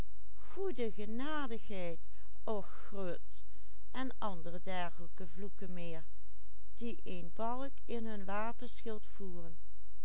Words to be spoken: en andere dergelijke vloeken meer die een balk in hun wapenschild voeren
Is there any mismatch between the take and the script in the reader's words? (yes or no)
no